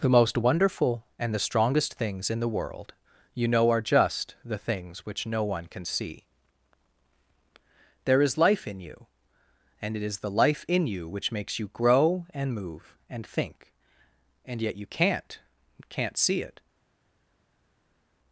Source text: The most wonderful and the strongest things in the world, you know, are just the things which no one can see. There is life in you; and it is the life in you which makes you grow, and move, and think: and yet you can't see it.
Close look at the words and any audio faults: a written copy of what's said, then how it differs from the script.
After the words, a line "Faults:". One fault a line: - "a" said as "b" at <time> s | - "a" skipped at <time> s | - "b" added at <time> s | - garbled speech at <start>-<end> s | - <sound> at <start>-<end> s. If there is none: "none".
The most wonderful and the strongest things in the world, you know, are just the things which no one can see. There is life in you; and it is the life in you which makes you grow, and move, and think: and yet you can't can't see it.
Faults:
- "can't" added at 15.9 s